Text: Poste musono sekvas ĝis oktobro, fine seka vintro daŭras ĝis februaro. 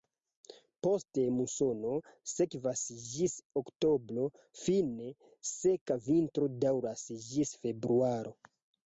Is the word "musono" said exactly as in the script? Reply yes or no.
yes